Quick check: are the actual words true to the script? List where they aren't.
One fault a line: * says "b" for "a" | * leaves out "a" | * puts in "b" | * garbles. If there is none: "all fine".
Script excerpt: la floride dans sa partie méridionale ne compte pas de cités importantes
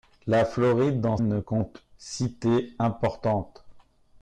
* leaves out "sa partie méridionale"
* leaves out "pas de"